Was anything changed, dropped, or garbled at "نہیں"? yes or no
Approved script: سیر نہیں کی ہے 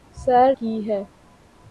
yes